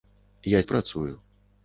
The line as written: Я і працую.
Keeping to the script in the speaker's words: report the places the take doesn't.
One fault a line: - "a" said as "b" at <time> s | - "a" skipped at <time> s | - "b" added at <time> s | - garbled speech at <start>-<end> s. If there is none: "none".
none